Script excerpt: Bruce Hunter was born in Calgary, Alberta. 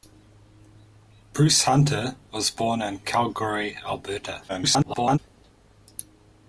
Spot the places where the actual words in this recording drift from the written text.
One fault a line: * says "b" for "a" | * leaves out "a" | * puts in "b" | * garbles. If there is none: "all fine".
* garbles